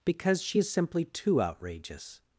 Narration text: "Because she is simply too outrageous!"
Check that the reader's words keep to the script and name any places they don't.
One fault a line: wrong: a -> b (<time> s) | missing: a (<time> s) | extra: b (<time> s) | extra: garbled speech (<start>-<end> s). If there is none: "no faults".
no faults